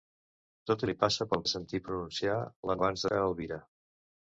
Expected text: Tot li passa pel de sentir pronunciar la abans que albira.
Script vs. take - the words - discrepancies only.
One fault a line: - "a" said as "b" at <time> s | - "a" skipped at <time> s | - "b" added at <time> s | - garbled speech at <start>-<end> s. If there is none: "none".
none